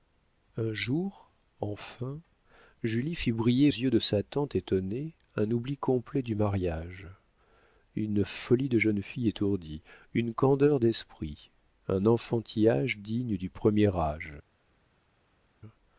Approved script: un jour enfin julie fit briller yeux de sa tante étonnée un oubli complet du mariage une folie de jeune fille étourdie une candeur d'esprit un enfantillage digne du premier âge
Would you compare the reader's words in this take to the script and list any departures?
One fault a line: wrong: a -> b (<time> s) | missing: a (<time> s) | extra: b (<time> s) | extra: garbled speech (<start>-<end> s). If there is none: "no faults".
no faults